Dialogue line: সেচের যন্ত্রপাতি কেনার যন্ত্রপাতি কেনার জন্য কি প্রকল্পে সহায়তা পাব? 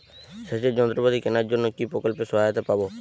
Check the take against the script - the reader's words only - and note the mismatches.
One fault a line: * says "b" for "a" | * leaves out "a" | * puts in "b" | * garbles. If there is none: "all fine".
* leaves out "যন্ত্রপাতি কেনার"